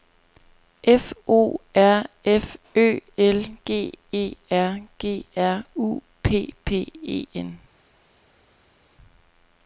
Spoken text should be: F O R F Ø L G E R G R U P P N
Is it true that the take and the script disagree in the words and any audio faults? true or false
true